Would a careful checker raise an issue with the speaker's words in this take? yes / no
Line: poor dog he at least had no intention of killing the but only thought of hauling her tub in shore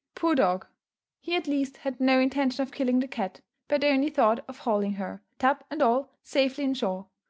yes